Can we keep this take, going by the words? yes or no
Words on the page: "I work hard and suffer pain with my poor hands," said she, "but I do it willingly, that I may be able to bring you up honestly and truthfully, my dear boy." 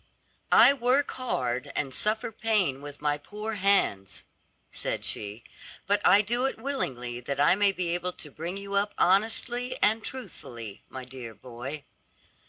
yes